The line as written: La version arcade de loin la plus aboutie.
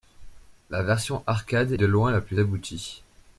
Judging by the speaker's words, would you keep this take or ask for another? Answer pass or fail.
pass